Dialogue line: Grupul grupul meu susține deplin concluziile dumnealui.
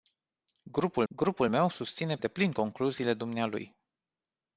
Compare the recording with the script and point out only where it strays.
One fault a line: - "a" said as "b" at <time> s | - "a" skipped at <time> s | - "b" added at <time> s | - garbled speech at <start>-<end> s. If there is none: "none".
none